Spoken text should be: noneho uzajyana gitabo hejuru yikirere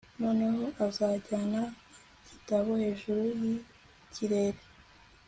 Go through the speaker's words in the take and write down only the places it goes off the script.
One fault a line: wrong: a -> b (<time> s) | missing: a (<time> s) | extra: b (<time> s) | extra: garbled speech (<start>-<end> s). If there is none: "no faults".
no faults